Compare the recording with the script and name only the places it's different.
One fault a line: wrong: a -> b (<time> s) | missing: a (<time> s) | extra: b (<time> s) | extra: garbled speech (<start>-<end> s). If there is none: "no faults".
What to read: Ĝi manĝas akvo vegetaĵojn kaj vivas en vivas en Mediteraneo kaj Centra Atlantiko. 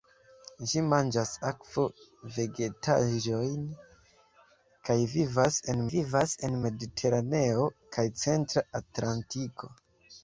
no faults